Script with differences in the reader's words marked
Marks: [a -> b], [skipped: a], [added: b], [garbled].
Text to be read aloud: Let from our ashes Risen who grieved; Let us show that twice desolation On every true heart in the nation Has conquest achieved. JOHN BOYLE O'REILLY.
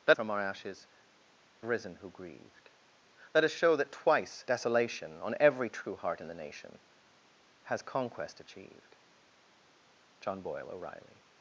Let from our ashes Risen who grieved; Let us show that twice desolation On every true heart in the nation Has conquest achieved. JOHN BOYLE O'REILLY.